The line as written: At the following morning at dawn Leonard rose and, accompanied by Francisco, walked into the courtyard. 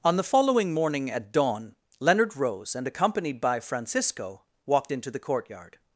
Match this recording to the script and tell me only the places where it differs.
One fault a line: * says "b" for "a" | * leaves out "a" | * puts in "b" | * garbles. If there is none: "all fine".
* says "On" for "At"